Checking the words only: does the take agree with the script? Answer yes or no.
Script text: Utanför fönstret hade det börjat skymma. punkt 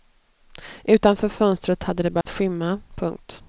yes